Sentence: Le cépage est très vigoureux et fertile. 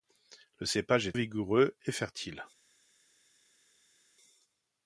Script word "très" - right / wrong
wrong